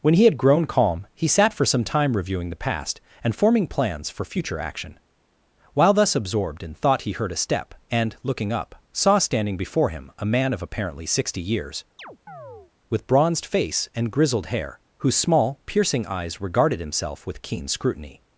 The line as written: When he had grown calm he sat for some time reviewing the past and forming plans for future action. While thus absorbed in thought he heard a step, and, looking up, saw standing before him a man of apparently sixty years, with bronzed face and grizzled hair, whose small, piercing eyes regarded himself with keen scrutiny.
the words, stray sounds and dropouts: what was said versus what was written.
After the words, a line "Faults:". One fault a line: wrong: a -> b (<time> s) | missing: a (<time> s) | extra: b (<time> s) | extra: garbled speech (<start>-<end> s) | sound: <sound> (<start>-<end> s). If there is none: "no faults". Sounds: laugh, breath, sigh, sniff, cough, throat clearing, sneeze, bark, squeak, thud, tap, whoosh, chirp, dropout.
When he had grown calm he sat for some time reviewing the past and forming plans for future action. While thus absorbed in thought he heard a step, and, looking up, saw standing before him a man of apparently sixty years, with bronzed face and grizzled hair, whose small, piercing eyes regarded himself with keen scrutiny.
Faults:
sound: chirp (12.0-12.7 s)